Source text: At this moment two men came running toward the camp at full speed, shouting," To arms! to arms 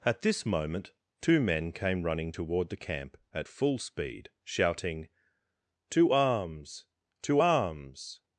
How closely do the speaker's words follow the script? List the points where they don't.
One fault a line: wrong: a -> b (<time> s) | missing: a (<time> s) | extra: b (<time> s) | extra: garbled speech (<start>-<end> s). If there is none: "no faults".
no faults